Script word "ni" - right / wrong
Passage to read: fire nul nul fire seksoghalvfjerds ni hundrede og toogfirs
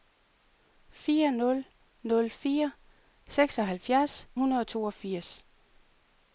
wrong